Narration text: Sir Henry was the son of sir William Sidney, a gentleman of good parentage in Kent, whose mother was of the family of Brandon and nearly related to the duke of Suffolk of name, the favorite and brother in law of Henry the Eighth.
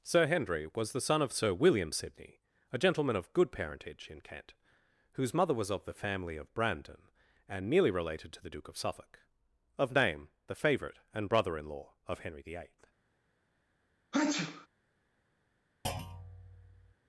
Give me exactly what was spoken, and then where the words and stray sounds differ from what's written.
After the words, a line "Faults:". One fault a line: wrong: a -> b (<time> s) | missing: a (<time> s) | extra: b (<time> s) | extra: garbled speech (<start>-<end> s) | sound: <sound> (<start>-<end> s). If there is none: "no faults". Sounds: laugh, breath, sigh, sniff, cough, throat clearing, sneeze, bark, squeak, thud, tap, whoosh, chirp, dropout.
Sir Henry was the son of sir William Sidney, a gentleman of good parentage in Kent, whose mother was of the family of Brandon and nearly related to the duke of Suffolk of name, the favorite and brother in law of Henry the Eighth.
Faults:
sound: sneeze (14.1-14.7 s)
sound: thud (15.8-16.9 s)